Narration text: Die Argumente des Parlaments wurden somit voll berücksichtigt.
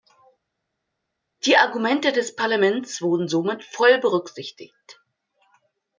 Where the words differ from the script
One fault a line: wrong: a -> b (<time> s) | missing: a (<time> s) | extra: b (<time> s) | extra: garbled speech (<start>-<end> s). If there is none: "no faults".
no faults